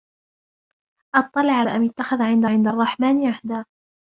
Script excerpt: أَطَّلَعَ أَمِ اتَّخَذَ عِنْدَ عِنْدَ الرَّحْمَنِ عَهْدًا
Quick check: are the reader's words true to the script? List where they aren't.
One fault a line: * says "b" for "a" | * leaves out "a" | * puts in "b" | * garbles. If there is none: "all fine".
all fine